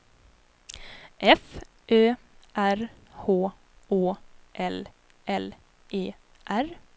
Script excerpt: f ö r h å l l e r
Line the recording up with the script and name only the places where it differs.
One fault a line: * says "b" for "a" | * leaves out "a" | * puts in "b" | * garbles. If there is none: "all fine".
all fine